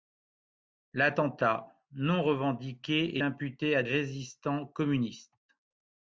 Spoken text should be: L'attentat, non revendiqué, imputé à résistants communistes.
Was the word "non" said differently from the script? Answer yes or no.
no